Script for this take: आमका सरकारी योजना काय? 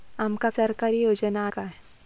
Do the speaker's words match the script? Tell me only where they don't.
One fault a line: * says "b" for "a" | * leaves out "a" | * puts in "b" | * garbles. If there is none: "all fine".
all fine